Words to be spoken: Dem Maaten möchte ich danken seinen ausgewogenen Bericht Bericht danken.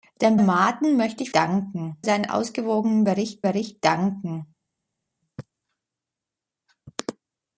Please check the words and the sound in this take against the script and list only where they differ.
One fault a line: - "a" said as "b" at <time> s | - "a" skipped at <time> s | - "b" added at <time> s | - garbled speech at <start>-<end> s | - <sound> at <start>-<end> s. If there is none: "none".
none